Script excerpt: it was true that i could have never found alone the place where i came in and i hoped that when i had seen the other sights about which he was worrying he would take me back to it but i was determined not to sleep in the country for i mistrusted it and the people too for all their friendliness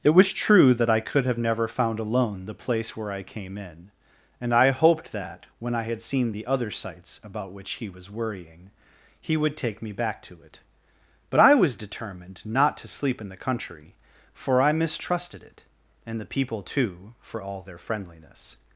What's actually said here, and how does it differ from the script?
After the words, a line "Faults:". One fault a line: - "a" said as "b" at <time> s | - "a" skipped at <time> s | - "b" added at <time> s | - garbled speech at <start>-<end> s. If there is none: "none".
it was true that i could have never found alone the place where i came in and i hoped that when i had seen the other sights about which he was worrying he would take me back to it but i was determined not to sleep in the country for i mistrusted it and the people too for all their friendliness
Faults:
none